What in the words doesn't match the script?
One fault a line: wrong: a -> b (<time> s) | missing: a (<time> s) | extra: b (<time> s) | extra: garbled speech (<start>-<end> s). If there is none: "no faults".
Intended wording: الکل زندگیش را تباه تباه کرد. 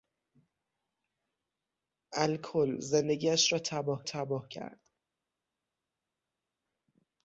no faults